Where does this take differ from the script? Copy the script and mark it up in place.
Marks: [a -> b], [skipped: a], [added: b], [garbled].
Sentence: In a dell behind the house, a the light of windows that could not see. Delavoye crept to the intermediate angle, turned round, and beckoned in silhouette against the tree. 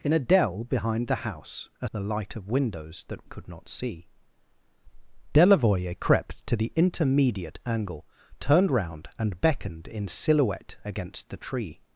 In a dell behind the house, a the light of windows that could not see. Delavoye crept to the intermediate angle, turned round, and beckoned in silhouette against the tree.